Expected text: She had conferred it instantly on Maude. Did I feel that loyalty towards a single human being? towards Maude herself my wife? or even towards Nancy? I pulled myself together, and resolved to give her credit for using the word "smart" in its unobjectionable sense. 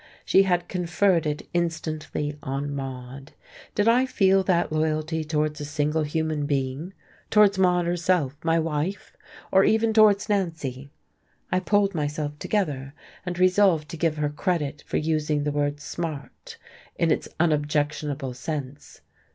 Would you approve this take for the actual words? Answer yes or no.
yes